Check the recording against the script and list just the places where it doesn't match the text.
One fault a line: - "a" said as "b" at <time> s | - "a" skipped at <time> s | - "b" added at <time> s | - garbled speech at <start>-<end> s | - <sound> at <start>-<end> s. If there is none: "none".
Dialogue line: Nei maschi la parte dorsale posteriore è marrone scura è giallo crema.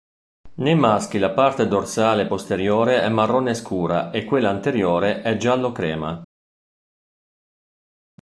- "e quella anteriore" added at 4.1 s